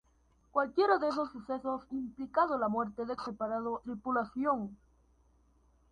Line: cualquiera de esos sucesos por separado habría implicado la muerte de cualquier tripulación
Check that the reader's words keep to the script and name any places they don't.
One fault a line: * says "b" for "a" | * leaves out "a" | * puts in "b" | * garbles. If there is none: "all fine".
* leaves out "por separado habría"
* says "separado" for "cualquier"